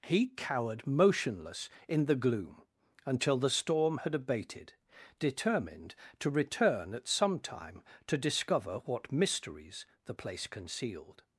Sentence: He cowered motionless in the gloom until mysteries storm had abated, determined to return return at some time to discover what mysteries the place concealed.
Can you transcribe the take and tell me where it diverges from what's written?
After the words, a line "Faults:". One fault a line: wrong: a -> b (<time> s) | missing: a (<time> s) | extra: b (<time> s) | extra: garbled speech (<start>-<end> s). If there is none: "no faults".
He cowered motionless in the gloom until the storm had abated, determined to return at some time to discover what mysteries the place concealed.
Faults:
wrong: mysteries -> the (3.4 s)
missing: return (6.9 s)